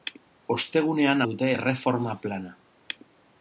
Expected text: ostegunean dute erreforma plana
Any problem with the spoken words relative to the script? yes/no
no